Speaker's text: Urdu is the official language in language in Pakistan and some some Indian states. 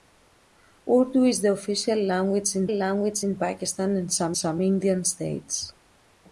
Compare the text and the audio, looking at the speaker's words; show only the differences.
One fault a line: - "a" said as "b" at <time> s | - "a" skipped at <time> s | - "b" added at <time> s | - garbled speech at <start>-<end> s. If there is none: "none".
none